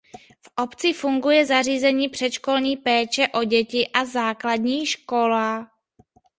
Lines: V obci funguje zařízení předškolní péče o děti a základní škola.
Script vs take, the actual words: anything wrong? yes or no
no